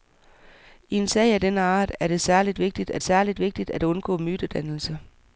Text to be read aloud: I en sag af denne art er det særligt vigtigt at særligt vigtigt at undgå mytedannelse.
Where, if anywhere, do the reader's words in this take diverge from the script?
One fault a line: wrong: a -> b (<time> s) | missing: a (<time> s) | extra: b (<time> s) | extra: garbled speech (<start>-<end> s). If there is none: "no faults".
no faults